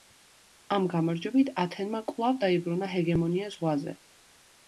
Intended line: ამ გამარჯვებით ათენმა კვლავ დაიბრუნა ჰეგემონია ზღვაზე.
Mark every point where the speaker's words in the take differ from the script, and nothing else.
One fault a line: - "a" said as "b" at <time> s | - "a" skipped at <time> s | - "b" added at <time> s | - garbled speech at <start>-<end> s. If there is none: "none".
none